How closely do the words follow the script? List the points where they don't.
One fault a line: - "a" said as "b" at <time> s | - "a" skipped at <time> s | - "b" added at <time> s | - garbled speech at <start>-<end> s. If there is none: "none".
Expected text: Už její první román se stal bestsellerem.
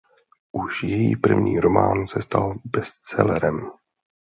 none